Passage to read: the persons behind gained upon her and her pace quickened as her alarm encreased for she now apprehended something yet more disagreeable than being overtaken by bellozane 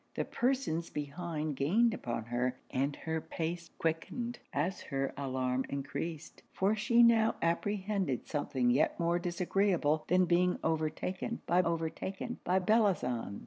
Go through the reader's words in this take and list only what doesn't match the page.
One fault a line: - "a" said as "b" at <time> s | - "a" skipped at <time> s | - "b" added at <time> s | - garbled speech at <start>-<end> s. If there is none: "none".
- "overtaken by" added at 11.6 s